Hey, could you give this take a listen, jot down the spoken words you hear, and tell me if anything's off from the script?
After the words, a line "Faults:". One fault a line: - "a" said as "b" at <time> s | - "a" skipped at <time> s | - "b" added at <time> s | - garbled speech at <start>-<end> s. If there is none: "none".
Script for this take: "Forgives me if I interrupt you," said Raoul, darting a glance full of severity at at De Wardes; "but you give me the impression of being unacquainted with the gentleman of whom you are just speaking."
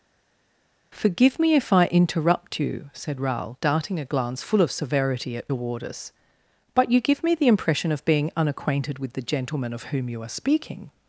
"Forgive me if I interrupt you," said Raoul, darting a glance full of severity at De Wardes; "but you give me the impression of being unacquainted with the gentleman of whom you are speaking."
Faults:
- "Forgives" said as "Forgive" at 0.9 s
- "at" skipped at 5.5 s
- "just" skipped at 10.3 s